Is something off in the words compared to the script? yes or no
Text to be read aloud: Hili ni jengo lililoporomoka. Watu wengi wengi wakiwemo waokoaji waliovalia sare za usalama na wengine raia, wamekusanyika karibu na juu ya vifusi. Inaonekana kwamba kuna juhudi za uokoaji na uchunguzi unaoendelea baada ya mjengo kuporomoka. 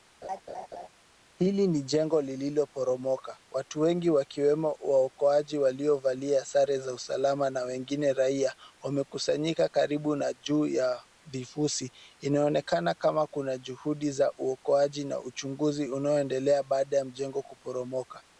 yes